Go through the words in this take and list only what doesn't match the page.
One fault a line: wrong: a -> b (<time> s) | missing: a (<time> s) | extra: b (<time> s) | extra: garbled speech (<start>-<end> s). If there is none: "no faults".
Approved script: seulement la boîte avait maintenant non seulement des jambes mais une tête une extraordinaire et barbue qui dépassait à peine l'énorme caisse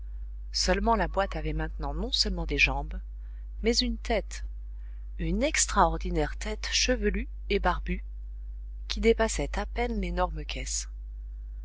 extra: tête chevelue (6.4 s)